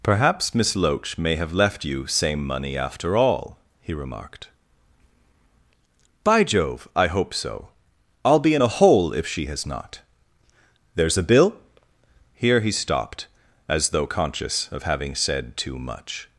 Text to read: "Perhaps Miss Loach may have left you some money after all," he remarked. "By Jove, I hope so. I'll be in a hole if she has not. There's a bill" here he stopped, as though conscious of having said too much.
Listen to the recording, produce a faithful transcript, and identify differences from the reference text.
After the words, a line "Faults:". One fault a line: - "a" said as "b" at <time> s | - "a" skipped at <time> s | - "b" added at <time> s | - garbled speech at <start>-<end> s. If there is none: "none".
"Perhaps Miss Loach may have left you same money after all," he remarked. "By Jove, I hope so. I'll be in a hole if she has not. There's a bill" here he stopped, as though conscious of having said too much.
Faults:
- "some" said as "same" at 2.1 s